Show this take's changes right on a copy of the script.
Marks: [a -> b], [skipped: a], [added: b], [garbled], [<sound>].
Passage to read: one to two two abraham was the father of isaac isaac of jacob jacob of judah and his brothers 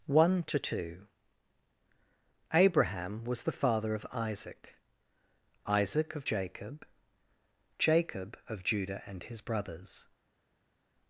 one to two [skipped: two] abraham was the father of isaac isaac of jacob jacob of judah and his brothers